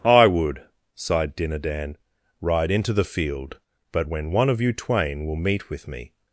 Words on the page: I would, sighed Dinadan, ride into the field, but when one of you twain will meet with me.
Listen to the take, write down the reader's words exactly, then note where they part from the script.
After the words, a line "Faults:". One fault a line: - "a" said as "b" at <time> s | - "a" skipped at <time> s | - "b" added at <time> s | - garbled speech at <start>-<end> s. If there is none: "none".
I would, sighed Dinadan, ride into the field, but when one of you twain will meet with me.
Faults:
none